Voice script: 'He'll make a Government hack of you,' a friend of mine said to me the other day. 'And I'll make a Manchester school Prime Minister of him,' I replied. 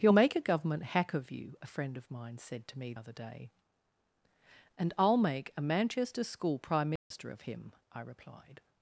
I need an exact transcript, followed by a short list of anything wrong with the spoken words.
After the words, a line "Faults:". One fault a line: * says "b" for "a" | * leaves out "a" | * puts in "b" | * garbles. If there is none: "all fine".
'He'll make a Government hack of you,' a friend of mine said to me other day. 'And I'll make a Manchester school Prime Minister of him,' I replied.
Faults:
* leaves out "the"